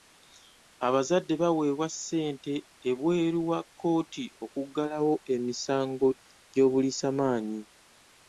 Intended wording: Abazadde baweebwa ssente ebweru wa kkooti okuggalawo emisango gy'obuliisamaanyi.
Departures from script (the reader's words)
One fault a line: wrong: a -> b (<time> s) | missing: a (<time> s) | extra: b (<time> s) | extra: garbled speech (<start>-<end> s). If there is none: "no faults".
no faults